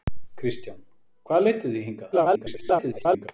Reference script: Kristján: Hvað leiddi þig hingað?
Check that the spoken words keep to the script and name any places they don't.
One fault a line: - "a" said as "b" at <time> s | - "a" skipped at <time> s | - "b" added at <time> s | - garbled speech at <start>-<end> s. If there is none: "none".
- garbled speech at 2.1-3.3 s